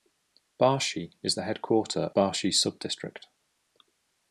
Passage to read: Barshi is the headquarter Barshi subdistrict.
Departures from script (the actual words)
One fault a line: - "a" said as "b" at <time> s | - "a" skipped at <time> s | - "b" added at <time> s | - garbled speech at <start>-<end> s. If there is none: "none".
none